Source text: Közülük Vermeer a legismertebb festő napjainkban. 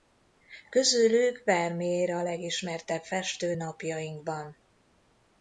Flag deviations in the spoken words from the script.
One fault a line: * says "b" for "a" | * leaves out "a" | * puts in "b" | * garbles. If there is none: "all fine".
all fine